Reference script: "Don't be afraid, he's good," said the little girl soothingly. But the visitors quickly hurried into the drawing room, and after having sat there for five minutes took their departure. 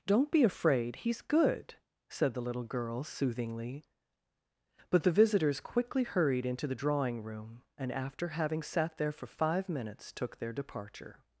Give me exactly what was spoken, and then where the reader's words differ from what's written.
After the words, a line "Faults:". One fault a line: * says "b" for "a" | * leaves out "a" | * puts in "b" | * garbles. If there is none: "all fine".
"Don't be afraid, he's good," said the little girl soothingly. But the visitors quickly hurried into the drawing room, and after having sat there for five minutes took their departure.
Faults:
all fine